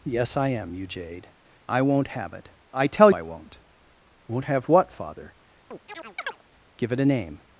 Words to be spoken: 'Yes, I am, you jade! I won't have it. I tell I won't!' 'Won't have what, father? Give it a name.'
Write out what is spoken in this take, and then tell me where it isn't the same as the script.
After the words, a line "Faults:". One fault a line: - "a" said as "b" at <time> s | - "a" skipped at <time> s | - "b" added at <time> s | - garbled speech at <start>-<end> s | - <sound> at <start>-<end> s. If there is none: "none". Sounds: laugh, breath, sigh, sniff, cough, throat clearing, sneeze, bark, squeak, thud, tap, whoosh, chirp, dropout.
'Yes, I am, you jade! I won't have it. I tell I won't!' 'Won't have what, father? Give it a name.'
Faults:
- chirp at 5.7-6.4 s